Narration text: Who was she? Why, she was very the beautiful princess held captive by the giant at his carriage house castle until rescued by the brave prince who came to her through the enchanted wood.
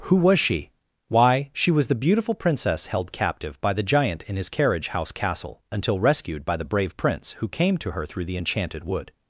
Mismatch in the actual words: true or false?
true